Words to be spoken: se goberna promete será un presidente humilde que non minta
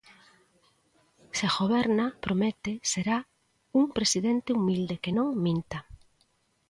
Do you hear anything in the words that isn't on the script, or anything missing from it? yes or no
no